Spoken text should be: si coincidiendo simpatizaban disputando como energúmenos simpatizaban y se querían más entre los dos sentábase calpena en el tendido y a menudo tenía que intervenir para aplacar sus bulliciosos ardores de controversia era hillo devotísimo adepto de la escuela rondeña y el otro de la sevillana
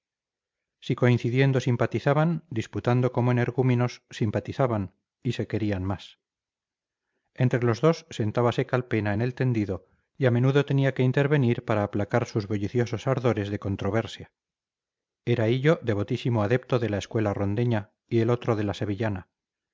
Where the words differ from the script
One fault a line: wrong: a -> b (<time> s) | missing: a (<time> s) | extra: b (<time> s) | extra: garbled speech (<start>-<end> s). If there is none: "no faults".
no faults